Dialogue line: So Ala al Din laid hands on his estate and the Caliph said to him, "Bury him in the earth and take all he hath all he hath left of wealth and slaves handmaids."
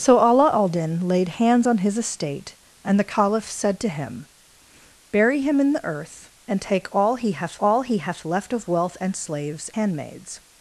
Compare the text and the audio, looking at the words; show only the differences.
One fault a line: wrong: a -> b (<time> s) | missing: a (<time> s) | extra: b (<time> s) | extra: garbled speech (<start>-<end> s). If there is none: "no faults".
no faults